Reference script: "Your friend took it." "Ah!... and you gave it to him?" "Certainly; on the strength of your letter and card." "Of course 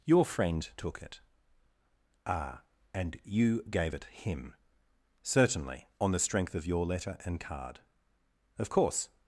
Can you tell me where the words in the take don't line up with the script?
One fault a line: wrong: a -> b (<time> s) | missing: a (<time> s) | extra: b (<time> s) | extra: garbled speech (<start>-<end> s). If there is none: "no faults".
missing: to (4.0 s)